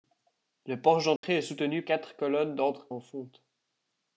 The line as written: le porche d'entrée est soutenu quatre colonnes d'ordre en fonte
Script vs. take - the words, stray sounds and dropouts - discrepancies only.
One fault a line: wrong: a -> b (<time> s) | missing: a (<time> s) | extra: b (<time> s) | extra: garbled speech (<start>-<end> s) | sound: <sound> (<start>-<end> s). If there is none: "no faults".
sound: dropout (1.2-1.2 s)